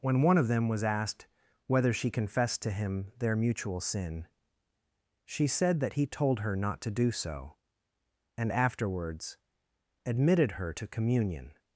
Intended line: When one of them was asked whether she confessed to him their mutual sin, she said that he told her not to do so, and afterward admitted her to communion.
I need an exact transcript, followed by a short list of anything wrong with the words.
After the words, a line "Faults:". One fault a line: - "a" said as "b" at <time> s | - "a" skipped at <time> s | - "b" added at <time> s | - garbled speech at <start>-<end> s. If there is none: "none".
When one of them was asked whether she confessed to him their mutual sin, she said that he told her not to do so, and afterwards admitted her to communion.
Faults:
- "afterward" said as "afterwards" at 8.5 s